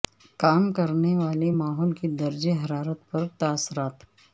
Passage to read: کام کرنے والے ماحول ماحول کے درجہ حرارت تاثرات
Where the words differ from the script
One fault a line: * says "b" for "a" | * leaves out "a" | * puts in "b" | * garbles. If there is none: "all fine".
* leaves out "ماحول"
* puts in "پر"